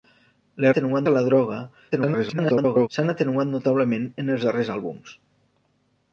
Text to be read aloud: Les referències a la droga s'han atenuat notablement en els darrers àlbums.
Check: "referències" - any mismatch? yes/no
yes